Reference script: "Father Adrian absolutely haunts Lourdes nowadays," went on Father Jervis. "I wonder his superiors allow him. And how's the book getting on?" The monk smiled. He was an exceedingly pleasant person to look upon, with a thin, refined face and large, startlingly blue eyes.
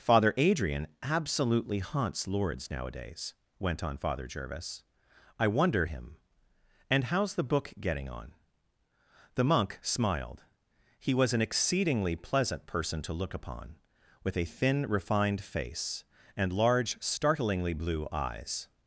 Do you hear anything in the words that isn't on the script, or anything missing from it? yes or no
yes